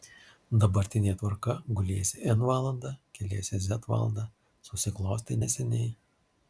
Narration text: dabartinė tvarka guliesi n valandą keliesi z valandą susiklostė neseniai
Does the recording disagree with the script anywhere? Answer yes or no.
no